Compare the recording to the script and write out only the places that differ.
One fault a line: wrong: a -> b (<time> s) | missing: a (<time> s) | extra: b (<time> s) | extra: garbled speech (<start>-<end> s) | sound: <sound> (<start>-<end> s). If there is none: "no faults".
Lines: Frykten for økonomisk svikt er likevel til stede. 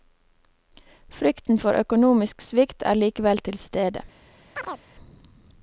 sound: chirp (4.6-4.8 s)